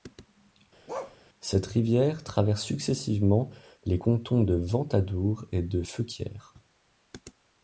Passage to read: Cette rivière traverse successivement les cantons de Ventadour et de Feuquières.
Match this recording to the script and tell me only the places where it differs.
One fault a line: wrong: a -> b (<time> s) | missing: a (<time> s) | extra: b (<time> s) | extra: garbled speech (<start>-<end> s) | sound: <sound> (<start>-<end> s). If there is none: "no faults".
sound: bark (0.9-1.2 s)